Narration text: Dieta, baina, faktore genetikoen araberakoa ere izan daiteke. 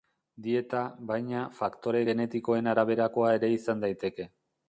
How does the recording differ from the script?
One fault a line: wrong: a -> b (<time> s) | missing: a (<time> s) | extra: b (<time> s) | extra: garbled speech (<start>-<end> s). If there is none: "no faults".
no faults